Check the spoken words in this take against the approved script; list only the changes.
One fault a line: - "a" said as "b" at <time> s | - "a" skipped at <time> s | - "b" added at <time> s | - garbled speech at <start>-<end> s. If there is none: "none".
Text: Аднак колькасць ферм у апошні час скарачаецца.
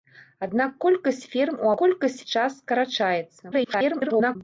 - "апошні" said as "колькасць" at 1.8 s
- garbled speech at 3.5-4.4 s